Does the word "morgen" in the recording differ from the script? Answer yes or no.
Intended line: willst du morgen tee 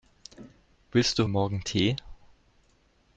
no